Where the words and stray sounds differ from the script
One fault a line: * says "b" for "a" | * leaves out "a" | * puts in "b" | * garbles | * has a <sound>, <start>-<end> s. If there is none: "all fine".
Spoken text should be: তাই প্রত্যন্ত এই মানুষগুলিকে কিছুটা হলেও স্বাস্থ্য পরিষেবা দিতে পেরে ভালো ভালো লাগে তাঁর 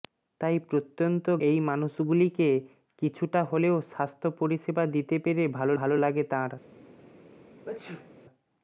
* has a sneeze, 7.6-8.1 s